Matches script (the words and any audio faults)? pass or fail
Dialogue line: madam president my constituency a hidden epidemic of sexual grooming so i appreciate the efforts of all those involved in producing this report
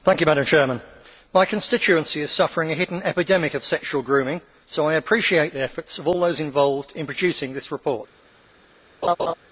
fail